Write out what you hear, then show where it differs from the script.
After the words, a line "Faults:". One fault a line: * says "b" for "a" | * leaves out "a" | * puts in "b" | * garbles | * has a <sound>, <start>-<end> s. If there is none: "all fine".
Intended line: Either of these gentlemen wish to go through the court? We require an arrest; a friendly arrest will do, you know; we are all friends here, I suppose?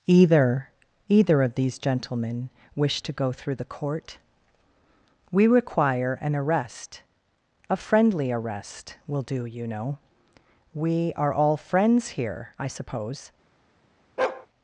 Either either of these gentlemen wish to go through the court? We require an arrest; a friendly arrest will do, you know; we are all friends here, I suppose?
Faults:
* puts in "either"
* has a bark, 14.2-14.5 s